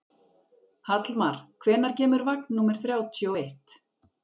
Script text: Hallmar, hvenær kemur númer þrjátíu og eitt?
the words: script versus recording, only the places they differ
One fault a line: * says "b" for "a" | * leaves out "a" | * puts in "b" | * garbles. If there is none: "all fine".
* puts in "vagn"